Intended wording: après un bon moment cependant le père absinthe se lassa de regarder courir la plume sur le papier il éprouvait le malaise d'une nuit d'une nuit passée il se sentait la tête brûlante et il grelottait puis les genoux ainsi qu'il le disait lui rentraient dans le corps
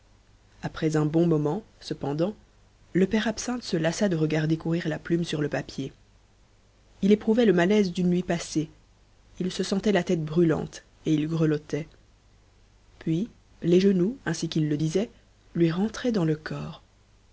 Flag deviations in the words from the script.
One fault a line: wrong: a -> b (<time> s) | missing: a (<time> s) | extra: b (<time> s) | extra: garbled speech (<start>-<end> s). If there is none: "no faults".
missing: d'une nuit (8.2 s)